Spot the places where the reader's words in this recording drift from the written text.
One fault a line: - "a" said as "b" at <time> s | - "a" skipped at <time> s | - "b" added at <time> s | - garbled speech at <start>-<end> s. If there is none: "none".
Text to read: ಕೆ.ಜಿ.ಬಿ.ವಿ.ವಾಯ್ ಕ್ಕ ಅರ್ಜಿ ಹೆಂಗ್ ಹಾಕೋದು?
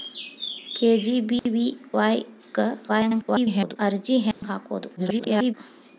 - garbled speech at 2.9-3.8 s
- garbled speech at 5.0-5.5 s